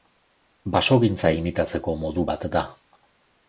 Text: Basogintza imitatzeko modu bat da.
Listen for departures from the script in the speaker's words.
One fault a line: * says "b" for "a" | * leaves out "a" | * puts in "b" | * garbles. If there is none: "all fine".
all fine